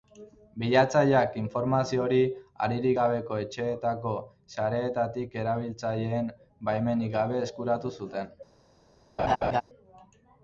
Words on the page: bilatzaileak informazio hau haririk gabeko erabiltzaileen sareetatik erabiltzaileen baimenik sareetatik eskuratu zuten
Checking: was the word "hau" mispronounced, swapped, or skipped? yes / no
yes